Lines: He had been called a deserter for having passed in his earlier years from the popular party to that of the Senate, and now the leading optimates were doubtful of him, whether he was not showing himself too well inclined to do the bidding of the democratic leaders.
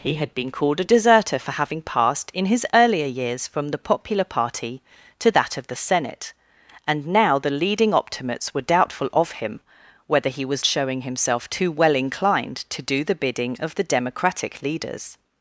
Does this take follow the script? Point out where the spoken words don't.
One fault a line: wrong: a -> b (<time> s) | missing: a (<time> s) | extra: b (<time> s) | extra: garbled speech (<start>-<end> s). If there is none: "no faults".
missing: not (10.7 s)